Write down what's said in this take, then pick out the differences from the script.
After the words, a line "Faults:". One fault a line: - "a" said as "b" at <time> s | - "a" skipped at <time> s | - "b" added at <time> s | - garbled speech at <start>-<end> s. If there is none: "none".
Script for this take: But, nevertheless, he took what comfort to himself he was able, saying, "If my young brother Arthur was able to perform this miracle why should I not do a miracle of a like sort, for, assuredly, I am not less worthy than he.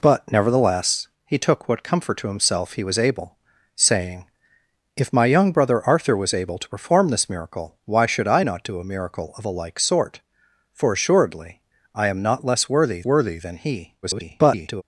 But, nevertheless, he took what comfort to himself he was able, saying, "If my young brother Arthur was able to perform this miracle why should I not do a miracle of a like sort, for, assuredly, I am not less worthy worthy than he. [garbled]
Faults:
- "worthy" added at 13.0 s
- garbled speech at 14.0-14.8 s